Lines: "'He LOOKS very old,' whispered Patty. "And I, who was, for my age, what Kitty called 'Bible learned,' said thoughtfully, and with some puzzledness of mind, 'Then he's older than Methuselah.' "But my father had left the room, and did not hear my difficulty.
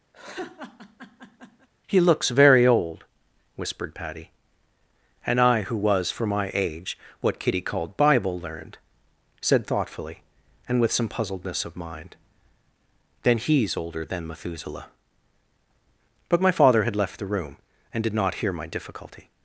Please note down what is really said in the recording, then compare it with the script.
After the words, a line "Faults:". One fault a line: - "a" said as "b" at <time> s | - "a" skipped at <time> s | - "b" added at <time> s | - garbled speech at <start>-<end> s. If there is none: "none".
"'He LOOKS very old,' whispered Patty. "And I, who was, for my age, what Kitty called 'Bible learned,' said thoughtfully, and with some puzzledness of mind, 'Then he's older than Methuselah.' "But my father had left the room, and did not hear my difficulty.
Faults:
none